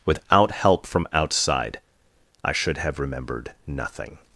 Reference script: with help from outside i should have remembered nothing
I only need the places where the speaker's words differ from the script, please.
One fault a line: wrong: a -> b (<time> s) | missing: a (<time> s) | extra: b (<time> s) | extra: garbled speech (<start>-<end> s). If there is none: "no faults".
wrong: with -> without (0.1 s)